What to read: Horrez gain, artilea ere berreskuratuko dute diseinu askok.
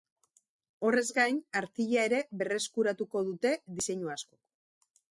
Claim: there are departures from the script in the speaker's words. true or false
false